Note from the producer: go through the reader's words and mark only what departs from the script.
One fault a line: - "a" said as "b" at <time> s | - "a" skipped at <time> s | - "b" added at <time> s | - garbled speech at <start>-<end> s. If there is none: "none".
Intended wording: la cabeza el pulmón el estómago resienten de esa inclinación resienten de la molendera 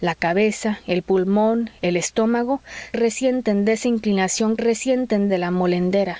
none